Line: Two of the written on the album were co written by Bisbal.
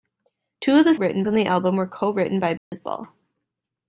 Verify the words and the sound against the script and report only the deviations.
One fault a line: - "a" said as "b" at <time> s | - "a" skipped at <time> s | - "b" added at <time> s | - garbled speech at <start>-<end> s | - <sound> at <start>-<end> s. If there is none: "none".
- dropout at 2.6-2.7 s